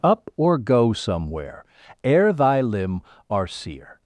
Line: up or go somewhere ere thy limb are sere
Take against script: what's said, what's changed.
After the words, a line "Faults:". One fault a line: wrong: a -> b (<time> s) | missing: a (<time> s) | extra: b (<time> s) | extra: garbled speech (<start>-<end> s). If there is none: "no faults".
up or go somewhere ere thy limb are sere
Faults:
no faults